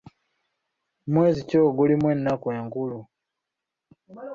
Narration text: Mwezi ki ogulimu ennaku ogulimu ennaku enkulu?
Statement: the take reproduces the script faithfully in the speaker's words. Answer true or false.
false